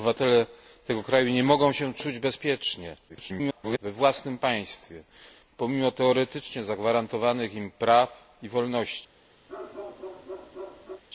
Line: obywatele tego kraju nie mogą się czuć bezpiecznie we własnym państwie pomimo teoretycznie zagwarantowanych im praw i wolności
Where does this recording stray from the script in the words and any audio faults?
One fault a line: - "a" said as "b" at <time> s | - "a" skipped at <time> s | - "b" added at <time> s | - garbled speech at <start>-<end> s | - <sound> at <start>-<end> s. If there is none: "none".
- garbled speech at 3.1-3.8 s
- bark at 9.5-11.0 s